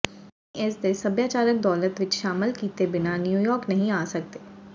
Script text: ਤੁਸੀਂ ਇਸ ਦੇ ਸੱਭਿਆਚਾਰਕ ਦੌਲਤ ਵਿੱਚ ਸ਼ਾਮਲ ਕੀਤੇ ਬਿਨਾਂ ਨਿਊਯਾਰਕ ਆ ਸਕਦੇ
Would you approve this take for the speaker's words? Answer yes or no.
no